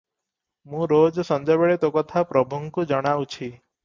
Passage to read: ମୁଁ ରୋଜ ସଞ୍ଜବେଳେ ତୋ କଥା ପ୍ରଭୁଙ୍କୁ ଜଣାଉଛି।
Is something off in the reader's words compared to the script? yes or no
no